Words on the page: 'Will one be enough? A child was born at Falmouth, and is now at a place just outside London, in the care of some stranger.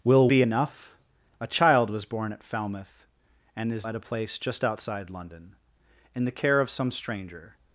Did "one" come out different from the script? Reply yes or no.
yes